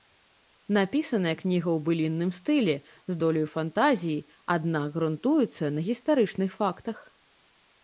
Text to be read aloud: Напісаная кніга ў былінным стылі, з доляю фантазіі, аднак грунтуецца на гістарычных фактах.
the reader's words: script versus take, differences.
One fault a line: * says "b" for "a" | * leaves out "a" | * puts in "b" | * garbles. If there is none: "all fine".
all fine